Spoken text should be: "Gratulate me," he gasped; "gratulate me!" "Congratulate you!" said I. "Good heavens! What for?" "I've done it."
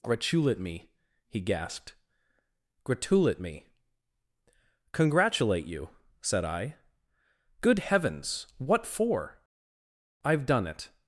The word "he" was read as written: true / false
true